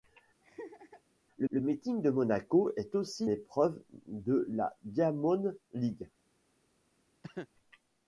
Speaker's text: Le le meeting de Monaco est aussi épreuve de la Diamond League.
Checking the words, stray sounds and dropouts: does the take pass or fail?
fail